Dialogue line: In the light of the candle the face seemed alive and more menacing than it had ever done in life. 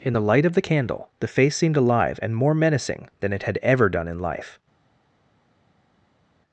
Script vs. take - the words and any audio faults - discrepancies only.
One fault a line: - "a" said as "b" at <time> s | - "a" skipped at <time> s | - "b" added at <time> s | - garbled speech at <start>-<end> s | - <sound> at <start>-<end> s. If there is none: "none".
none